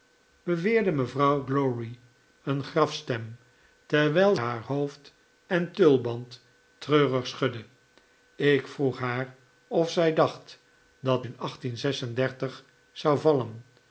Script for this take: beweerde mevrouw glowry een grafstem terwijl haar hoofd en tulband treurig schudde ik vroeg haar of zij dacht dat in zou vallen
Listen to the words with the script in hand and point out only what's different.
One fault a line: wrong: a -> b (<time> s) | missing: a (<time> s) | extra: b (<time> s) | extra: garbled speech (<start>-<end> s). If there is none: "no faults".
no faults